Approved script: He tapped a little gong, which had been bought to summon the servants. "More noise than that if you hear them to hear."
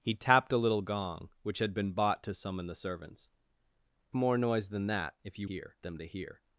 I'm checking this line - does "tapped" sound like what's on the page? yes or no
yes